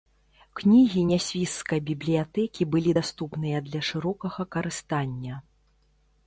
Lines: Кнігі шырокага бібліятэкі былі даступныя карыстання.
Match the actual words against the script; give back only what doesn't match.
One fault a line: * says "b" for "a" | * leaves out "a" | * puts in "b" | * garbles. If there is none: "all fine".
* says "нясвіжскай" for "шырокага"
* puts in "для шырокага"